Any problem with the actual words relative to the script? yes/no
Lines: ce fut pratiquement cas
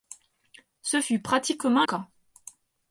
no